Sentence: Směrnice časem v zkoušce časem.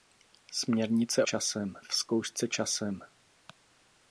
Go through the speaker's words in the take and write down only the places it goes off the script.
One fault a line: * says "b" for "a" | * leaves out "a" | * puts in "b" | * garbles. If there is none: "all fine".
all fine